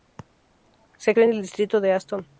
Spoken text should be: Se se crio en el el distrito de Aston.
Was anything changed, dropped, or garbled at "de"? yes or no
no